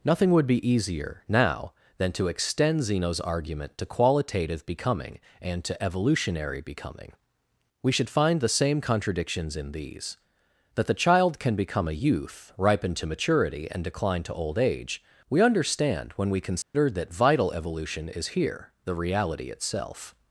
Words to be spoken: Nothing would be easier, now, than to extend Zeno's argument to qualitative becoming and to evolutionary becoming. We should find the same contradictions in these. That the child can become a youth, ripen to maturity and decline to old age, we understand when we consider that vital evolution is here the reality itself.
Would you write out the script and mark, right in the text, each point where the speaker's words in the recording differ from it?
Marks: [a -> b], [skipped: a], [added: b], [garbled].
Nothing would be easier, now, than to extend Zeno's argument to qualitative becoming and to evolutionary becoming. We should find the same contradictions in these. That the child can become a youth, ripen to maturity and decline to old age, we understand when we consider that vital evolution is here the reality itself.